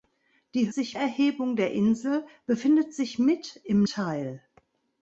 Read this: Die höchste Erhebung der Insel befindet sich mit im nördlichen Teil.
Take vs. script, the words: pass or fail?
fail